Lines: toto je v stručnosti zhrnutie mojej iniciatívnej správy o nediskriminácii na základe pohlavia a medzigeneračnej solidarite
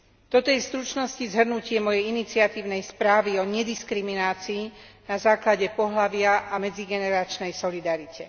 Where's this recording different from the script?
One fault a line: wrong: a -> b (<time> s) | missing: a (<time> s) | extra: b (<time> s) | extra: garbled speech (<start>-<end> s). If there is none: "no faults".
no faults